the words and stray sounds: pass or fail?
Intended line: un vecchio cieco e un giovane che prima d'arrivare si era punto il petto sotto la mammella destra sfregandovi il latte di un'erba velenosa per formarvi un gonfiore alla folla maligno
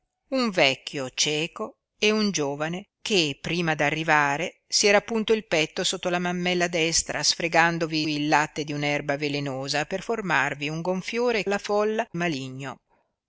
pass